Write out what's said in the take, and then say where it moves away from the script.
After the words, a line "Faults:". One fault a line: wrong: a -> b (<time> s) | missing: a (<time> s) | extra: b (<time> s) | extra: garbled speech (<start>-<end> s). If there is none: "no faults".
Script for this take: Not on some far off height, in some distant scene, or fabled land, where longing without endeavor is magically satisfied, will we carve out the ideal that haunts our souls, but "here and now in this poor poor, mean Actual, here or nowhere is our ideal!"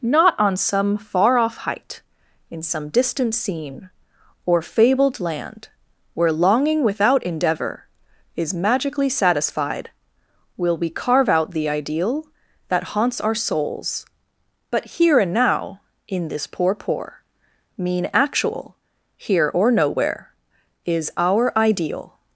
Not on some far off height, in some distant scene, or fabled land, where longing without endeavor is magically satisfied, will we carve out the ideal that haunts our souls, but "here and now in this poor poor, mean Actual, here or nowhere is our ideal!"
Faults:
no faults